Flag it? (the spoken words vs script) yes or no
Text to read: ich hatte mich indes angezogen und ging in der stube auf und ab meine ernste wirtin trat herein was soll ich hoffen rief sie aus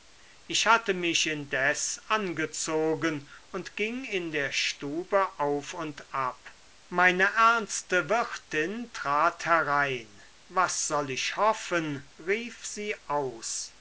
no